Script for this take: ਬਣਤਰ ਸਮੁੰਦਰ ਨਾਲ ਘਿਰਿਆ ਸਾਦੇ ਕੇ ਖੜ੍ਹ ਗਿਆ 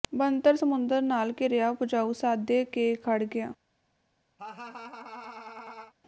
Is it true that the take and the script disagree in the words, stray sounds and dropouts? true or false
true